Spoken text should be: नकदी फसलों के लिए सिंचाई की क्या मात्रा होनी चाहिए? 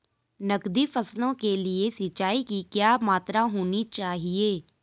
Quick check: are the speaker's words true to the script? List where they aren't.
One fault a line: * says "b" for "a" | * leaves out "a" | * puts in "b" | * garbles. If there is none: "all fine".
all fine